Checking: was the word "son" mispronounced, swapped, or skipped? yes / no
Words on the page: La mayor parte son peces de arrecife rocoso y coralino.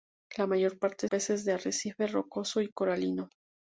yes